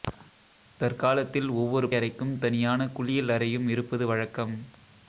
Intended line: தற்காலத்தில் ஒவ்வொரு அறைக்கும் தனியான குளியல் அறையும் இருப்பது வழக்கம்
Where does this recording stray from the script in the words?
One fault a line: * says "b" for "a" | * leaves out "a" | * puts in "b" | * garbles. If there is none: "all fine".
all fine